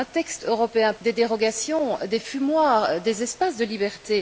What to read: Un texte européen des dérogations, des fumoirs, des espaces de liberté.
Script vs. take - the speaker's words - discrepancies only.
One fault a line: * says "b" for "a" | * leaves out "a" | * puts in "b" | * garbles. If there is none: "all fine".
all fine